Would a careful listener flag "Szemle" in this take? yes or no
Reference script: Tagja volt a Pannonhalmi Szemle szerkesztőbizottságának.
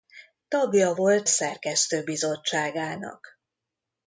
yes